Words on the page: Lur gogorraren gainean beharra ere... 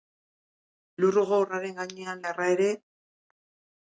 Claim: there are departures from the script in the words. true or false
false